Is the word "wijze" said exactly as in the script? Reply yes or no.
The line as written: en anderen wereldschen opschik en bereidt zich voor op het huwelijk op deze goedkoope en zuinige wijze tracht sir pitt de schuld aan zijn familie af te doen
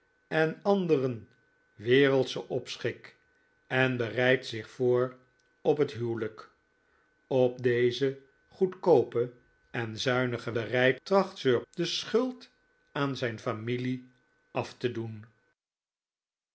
no